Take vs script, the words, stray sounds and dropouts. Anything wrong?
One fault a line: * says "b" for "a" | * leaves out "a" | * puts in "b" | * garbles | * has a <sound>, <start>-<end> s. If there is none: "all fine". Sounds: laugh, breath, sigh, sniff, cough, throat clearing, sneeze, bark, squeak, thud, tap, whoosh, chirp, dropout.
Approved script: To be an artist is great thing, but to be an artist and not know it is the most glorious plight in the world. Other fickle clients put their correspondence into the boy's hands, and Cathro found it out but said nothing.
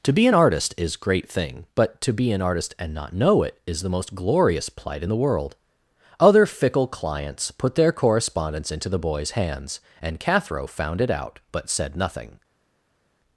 all fine